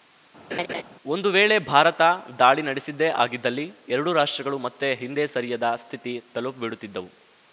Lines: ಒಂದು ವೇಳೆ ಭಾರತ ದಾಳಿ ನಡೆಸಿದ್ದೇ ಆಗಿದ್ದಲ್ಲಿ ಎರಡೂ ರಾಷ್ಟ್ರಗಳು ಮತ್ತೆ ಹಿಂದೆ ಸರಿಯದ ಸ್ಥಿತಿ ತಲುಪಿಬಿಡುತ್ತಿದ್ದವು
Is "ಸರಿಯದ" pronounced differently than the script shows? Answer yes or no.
no